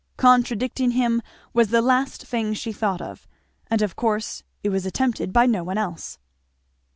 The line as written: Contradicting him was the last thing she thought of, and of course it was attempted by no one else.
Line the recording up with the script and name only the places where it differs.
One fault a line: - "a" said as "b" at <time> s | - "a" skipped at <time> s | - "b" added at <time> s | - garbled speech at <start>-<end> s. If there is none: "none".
none